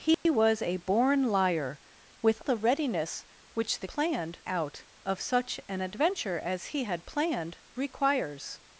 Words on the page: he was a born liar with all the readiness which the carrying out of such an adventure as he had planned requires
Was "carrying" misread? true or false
true